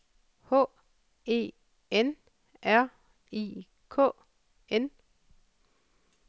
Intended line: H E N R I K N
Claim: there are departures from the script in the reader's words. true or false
false